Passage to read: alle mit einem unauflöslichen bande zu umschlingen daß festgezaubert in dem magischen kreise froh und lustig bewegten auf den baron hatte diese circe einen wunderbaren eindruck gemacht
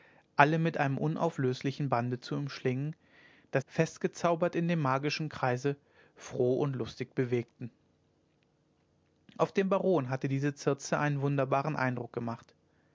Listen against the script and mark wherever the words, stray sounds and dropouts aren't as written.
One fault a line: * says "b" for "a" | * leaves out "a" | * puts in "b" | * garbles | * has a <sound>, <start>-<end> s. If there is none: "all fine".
all fine